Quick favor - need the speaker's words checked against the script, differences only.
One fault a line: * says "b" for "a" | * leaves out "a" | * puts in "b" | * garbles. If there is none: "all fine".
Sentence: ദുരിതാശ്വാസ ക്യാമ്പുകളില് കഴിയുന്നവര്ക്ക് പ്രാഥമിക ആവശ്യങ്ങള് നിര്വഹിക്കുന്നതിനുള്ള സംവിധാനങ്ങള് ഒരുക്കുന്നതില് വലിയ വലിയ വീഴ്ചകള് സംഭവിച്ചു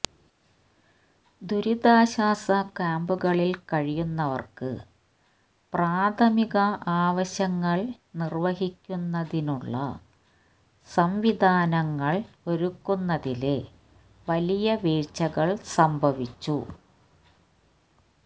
* leaves out "വലിയ"